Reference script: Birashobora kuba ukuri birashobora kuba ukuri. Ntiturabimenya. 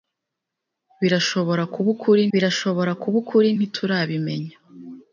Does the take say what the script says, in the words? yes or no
yes